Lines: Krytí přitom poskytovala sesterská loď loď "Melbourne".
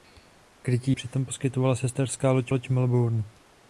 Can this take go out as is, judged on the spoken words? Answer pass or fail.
pass